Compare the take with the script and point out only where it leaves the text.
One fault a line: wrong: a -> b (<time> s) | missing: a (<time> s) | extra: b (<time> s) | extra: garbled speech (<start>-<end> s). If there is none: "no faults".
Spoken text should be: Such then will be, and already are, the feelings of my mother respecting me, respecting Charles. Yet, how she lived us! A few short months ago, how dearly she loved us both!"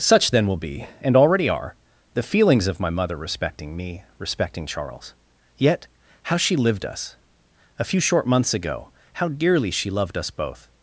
no faults